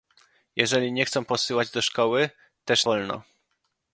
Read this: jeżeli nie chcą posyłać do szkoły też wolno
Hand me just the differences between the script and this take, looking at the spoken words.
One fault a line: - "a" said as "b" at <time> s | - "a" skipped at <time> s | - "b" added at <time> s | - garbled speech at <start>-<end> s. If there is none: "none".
none